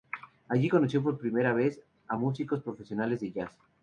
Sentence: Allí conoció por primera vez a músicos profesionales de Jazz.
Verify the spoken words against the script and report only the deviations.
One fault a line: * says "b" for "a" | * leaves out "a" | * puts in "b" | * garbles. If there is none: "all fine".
all fine